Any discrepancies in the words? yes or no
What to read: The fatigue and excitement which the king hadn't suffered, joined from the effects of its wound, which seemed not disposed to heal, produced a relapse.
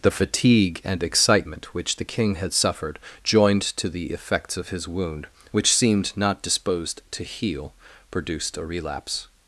yes